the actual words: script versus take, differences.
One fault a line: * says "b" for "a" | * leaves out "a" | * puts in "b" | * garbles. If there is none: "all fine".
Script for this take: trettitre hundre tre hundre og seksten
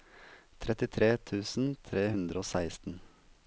* says "tusen" for "hundre"